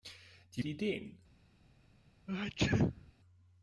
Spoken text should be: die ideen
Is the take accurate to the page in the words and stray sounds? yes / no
no